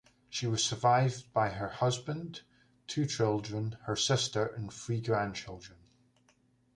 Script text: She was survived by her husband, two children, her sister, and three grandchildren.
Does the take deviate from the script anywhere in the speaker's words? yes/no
no